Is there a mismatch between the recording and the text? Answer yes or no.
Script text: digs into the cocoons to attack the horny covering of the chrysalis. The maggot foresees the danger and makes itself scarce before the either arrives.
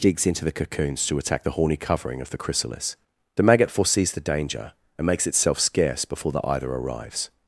no